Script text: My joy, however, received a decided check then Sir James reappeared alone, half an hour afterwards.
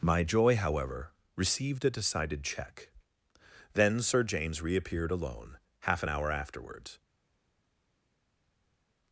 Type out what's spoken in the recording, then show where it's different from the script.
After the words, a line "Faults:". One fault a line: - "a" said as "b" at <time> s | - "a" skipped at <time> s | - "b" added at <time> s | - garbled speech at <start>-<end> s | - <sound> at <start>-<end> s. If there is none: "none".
My joy, however, received a decided check then Sir James reappeared alone, half an hour afterwards.
Faults:
none